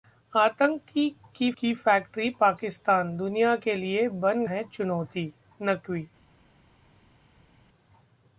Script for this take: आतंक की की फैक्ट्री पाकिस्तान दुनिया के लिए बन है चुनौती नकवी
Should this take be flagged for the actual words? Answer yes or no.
no